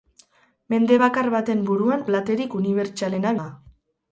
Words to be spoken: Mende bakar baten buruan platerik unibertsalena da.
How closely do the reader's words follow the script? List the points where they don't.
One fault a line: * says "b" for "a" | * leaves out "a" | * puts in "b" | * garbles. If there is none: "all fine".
all fine